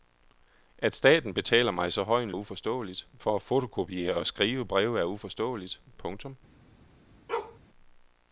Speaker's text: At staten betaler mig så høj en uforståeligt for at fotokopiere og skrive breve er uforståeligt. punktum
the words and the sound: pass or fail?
fail